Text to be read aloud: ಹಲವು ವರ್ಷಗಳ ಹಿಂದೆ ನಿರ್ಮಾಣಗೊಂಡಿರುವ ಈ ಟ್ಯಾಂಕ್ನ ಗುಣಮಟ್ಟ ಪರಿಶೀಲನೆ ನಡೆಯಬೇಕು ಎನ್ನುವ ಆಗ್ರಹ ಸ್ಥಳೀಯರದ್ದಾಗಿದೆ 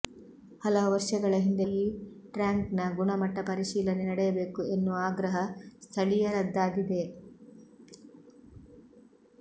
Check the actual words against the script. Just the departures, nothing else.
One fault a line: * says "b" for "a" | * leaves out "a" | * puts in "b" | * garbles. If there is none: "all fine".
* leaves out "ನಿರ್ಮಾಣಗೊಂಡಿರುವ"